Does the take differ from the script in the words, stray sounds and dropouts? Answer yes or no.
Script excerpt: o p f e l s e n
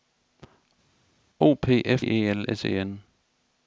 no